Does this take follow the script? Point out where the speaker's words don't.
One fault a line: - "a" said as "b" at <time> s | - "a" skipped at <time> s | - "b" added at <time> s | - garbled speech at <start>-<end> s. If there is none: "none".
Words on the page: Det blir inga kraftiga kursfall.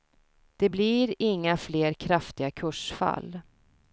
- "fler" added at 1.6 s